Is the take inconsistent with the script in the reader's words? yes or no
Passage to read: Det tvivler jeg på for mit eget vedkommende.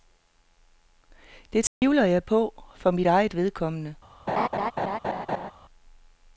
no